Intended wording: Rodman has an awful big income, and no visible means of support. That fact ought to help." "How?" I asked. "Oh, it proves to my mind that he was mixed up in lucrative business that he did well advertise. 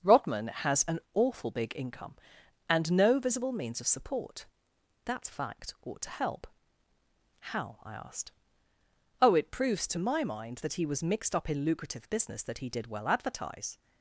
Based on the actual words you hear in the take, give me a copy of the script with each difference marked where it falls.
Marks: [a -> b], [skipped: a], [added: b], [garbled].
Rodman has an awful big income, and no visible means of support. That fact ought to help." "How?" I asked. "Oh, it proves to my mind that he was mixed up in lucrative business that he did well advertise.